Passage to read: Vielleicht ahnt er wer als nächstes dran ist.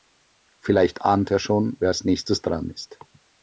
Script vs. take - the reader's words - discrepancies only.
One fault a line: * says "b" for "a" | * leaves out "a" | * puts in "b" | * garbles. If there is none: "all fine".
* puts in "schon"